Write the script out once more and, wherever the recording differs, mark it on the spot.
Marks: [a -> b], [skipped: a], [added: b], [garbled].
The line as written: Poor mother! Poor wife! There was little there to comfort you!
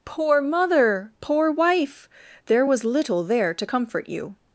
Poor mother! Poor wife! There was little there to comfort you!